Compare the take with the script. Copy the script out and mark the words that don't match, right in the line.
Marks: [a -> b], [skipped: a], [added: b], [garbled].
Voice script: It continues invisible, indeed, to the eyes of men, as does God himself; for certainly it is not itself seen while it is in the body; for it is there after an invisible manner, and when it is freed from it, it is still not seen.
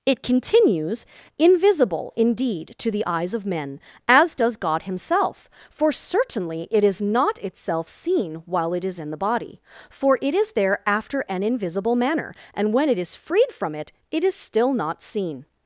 It continues invisible, indeed, to the eyes of men, as does God himself; for certainly it is not itself seen while it is in the body; for it is there after an invisible manner, and when it is freed from it, it is still not seen.